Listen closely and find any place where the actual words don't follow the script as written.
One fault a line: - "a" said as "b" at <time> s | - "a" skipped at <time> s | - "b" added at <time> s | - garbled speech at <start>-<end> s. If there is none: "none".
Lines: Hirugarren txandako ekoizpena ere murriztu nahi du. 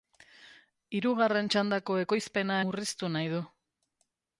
- "ere" skipped at 2.6 s